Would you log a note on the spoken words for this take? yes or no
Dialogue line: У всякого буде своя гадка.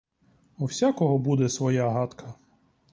no